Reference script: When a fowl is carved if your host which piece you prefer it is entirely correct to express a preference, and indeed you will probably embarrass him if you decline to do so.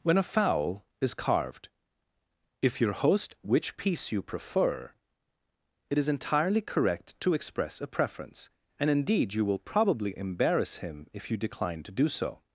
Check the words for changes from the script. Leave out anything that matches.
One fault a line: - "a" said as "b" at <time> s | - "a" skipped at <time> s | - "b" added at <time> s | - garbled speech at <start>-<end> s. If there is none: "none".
none